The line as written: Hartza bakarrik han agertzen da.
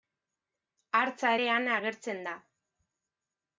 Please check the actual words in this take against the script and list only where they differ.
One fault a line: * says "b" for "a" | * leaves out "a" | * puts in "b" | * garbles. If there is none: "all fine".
* says "ere" for "bakarrik"